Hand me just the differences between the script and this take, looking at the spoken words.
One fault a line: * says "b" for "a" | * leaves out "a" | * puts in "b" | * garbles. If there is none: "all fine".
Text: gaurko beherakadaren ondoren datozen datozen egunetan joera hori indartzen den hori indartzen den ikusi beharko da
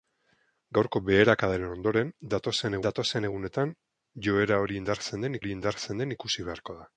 all fine